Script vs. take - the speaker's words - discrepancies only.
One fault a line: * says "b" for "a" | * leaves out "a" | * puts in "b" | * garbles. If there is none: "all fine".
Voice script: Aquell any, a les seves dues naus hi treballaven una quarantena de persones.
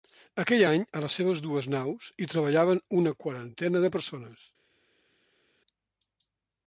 all fine